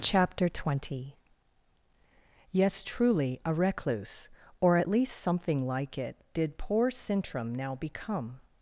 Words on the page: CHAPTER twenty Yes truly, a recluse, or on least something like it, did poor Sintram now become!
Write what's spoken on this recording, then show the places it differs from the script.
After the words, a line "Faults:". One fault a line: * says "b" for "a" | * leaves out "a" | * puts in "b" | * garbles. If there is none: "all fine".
CHAPTER twenty Yes truly, a recluse, or at least something like it, did poor Sintram now become!
Faults:
* says "at" for "on"